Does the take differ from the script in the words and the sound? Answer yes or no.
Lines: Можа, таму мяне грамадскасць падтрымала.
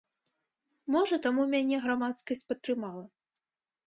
no